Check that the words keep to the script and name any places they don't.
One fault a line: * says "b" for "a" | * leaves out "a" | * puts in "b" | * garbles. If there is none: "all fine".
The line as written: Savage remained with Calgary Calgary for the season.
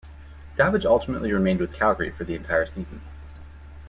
* puts in "ultimately"
* leaves out "Calgary"
* puts in "entire"